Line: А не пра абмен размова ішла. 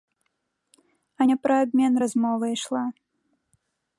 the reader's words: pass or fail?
pass